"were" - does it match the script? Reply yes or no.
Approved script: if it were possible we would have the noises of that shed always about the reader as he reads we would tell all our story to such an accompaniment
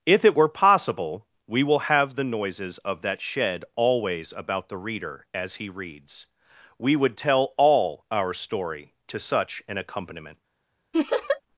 yes